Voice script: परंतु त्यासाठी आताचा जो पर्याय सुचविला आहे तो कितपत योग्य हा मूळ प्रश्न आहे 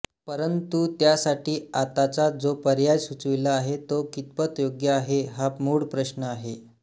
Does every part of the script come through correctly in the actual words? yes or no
no